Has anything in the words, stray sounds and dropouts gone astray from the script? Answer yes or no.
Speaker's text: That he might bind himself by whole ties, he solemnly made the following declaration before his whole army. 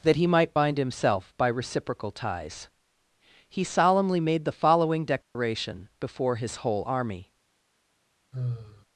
yes